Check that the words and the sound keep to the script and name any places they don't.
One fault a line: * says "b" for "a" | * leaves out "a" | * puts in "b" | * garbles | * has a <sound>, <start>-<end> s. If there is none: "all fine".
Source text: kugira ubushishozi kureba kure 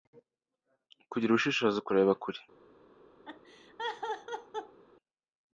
* has a laugh, 3.2-4.8 s